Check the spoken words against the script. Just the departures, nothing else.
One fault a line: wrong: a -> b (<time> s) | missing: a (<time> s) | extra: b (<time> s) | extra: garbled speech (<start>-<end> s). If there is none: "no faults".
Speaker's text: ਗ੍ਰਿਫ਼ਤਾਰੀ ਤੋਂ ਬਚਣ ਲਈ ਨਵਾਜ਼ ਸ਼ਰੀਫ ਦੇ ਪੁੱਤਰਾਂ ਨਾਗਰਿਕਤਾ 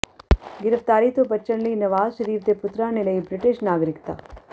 extra: ਨੇ ਲਈ ਬ੍ਰਿਟਿਸ਼ (2.9 s)